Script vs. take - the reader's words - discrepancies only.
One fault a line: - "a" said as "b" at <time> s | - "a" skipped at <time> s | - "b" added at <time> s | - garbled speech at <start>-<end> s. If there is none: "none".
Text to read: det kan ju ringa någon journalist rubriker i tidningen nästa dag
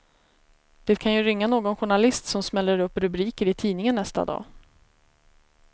- "som smäller upp" added at 2.2 s